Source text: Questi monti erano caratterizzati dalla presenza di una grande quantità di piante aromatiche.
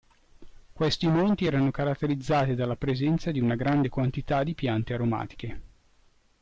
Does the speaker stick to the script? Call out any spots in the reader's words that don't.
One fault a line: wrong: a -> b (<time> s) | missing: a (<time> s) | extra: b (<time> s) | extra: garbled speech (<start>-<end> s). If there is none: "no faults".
no faults